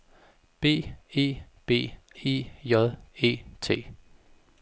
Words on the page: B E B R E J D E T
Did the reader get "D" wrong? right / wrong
wrong